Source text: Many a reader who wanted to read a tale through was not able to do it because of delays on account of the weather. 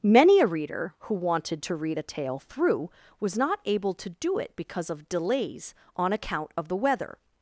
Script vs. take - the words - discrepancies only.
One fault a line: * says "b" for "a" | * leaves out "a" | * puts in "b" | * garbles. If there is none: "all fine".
all fine